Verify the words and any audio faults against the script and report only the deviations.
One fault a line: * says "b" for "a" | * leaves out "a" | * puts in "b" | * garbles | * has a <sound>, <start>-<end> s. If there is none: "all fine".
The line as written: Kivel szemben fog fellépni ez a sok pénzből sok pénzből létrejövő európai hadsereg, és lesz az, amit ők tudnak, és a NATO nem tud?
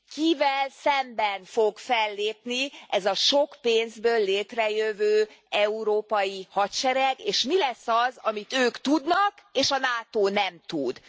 * leaves out "sok pénzből"
* puts in "mi"